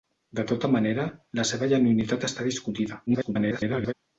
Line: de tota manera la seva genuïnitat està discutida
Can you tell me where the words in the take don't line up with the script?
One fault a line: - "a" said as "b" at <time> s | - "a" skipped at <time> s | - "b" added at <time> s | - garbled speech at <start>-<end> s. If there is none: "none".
- garbled speech at 3.1-3.9 s